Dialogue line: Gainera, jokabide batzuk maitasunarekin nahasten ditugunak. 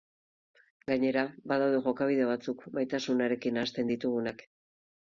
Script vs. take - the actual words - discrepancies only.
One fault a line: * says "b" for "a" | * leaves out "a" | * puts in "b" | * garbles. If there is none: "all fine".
* puts in "badaude"